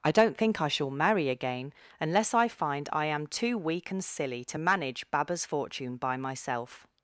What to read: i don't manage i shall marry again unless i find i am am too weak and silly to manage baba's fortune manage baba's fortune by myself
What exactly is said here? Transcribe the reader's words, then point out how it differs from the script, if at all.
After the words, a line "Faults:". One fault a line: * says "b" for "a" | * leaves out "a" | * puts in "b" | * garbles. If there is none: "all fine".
i don't think i shall marry again unless i find i am too weak and silly to manage baba's fortune by myself
Faults:
* says "think" for "manage"
* leaves out "am"
* leaves out "manage baba's fortune"